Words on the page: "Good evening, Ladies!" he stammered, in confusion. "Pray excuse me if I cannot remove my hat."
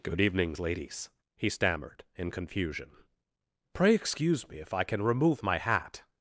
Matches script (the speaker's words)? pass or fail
fail